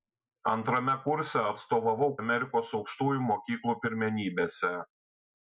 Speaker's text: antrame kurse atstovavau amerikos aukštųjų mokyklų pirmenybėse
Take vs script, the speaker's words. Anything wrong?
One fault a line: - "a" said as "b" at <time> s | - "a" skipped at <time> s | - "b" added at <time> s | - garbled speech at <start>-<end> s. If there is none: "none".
none